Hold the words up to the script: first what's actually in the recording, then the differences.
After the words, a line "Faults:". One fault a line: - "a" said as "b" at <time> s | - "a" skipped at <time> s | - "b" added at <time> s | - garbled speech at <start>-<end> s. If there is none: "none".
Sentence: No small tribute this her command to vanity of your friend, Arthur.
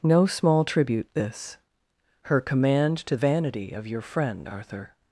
No small tribute this her command to vanity of your friend, Arthur.
Faults:
none